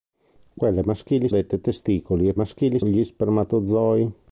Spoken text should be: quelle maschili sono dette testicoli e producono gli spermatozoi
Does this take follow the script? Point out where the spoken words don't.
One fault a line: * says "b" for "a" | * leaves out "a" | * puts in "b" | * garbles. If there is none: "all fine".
* leaves out "sono"
* says "maschili" for "producono"